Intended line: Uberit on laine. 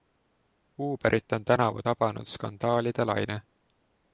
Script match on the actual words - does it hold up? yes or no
no